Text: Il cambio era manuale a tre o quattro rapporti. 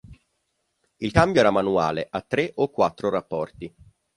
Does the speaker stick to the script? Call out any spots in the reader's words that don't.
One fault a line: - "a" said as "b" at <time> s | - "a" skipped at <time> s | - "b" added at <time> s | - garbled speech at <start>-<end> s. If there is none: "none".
none